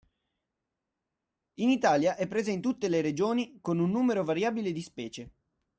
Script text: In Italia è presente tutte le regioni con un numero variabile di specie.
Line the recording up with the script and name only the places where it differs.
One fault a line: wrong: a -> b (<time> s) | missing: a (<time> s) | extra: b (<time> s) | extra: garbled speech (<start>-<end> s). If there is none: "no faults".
no faults